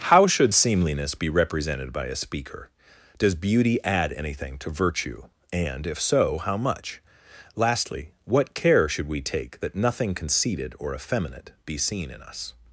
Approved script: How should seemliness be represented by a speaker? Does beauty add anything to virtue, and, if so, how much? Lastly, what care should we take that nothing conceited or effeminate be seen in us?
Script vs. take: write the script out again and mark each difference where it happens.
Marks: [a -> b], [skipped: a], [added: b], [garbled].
How should seemliness be represented by a speaker? Does beauty add anything to virtue, and, if so, how much? Lastly, what care should we take that nothing conceited or effeminate be seen in us?